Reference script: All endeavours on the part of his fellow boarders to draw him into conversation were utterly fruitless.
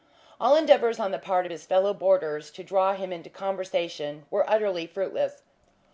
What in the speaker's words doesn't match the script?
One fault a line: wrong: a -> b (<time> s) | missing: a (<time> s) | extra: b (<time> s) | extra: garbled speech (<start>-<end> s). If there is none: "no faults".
no faults